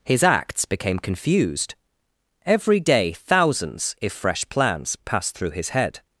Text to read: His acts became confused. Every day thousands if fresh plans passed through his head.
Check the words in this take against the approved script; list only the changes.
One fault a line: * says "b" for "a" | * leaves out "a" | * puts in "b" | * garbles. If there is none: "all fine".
all fine